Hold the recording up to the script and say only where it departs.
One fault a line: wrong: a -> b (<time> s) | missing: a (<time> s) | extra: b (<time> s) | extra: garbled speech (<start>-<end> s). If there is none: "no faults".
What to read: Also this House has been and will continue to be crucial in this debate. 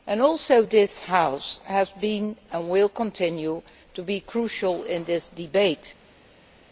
no faults